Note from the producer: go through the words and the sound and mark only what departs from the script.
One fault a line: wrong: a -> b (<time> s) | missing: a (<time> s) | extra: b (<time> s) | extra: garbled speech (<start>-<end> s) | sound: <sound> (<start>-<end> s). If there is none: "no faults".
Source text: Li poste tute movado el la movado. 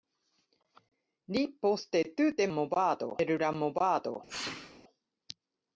sound: sneeze (4.3-4.8 s)